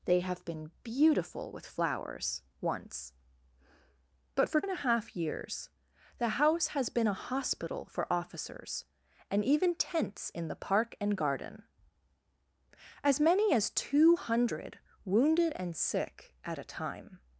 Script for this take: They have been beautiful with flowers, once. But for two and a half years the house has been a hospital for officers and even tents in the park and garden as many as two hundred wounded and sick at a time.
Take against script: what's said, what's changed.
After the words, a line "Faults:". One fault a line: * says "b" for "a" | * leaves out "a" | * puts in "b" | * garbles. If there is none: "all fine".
They have been beautiful with flowers, once. But for and a half years the house has been a hospital for officers and even tents in the park and garden as many as two hundred wounded and sick at a time.
Faults:
* leaves out "two"